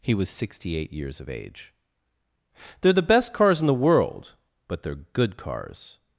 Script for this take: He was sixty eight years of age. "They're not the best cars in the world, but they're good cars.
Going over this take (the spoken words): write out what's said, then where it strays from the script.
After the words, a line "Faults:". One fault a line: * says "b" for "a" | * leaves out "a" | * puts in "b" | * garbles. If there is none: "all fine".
He was sixty eight years of age. "They're the best cars in the world, but they're good cars.
Faults:
* leaves out "not"